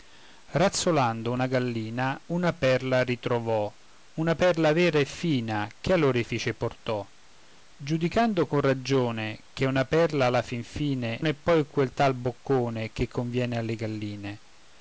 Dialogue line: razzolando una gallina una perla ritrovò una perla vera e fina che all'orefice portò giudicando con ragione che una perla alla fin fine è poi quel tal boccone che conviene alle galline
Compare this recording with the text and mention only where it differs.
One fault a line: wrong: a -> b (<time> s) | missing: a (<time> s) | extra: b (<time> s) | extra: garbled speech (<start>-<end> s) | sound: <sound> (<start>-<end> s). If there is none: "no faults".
no faults